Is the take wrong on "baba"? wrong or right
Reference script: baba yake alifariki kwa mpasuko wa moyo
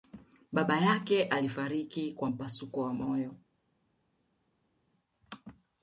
right